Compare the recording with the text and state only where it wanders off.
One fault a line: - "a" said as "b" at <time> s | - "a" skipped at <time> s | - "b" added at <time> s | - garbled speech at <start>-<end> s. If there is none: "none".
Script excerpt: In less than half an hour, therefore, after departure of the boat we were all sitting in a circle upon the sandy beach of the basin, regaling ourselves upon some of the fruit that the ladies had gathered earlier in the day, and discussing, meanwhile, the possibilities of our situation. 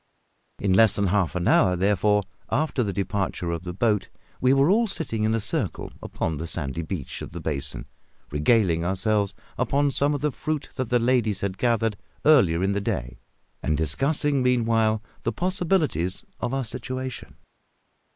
- "the" added at 2.8 s